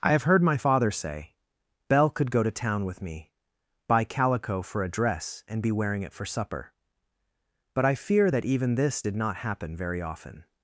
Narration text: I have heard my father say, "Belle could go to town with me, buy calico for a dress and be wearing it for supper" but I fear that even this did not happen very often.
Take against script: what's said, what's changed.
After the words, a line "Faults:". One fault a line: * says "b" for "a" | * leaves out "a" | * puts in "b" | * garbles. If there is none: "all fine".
I have heard my father say, "Belle could go to town with me, buy calico for a dress and be wearing it for supper" but I fear that even this did not happen very often.
Faults:
all fine